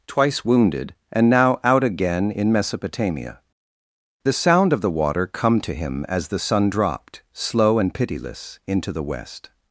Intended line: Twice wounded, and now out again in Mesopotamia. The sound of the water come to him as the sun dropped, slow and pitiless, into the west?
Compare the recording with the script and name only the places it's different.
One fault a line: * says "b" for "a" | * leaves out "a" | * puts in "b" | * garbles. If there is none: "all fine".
all fine